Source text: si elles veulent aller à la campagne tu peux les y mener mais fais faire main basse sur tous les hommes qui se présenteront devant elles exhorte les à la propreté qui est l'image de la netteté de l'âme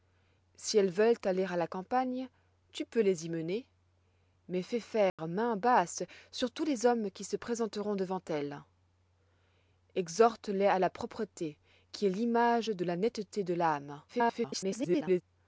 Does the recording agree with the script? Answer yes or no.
no